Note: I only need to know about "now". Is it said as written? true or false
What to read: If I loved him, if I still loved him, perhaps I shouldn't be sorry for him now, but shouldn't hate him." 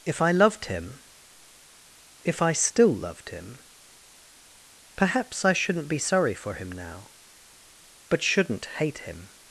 true